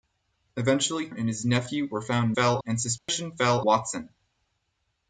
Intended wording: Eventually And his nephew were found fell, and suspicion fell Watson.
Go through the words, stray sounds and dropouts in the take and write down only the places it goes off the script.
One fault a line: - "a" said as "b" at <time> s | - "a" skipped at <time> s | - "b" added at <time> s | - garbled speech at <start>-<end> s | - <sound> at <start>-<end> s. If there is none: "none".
- dropout at 3.0-3.1 s